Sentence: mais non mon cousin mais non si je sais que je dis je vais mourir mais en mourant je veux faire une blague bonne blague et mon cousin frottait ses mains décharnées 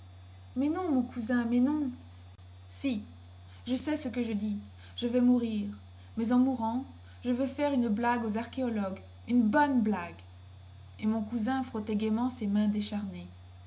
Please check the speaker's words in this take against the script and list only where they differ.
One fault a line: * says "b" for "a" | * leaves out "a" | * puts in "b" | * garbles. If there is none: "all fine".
* puts in "ce"
* puts in "aux archéologues une"
* puts in "gaiement"